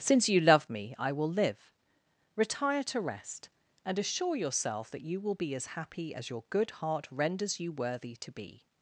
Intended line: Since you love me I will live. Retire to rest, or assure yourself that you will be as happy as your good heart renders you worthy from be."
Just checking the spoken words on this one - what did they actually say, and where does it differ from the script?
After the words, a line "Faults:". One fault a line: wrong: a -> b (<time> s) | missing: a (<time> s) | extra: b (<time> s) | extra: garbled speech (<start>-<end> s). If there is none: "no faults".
Since you love me I will live. Retire to rest, and assure yourself that you will be as happy as your good heart renders you worthy to be."
Faults:
wrong: or -> and (3.9 s)
wrong: from -> to (8.2 s)